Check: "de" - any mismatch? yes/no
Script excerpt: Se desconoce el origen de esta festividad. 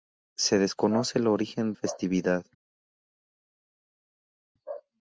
yes